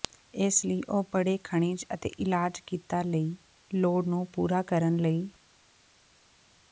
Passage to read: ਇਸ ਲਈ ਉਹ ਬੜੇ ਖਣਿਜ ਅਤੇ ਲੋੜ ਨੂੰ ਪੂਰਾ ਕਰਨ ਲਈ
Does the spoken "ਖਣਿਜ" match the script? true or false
true